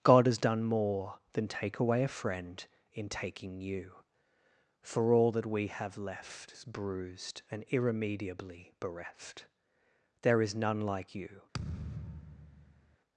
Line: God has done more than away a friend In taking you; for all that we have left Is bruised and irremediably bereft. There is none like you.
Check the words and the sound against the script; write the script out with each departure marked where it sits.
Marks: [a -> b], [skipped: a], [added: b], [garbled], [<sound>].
God has done more than [added: take] away a friend In taking you; for all that we have left Is bruised and irremediably bereft. There is none like you. [thud]